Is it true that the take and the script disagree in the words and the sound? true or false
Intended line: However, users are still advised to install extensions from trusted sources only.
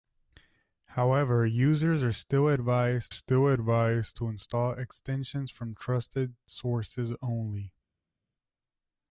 true